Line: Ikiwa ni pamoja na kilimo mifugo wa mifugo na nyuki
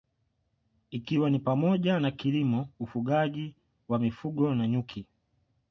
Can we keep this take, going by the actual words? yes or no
no